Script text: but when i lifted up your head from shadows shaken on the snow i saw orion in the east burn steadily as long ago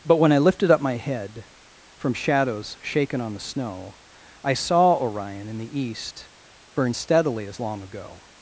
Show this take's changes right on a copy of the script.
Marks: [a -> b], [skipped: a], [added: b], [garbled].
but when i lifted up [your -> my] head from shadows shaken on the snow i saw orion in the east burn steadily as long ago